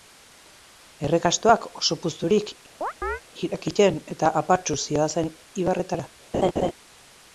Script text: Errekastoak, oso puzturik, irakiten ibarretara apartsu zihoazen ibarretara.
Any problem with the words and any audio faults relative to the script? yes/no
yes